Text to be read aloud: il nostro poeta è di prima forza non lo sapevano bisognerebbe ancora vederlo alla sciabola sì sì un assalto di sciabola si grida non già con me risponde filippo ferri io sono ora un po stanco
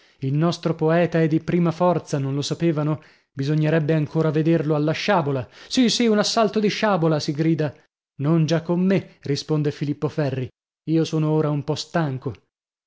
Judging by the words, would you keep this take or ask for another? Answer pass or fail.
pass